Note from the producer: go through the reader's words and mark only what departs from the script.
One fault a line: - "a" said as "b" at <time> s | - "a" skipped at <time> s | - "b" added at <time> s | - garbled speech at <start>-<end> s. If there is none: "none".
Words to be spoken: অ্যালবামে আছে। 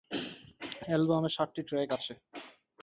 - "সাতটি ট্র্যাক" added at 1.4 s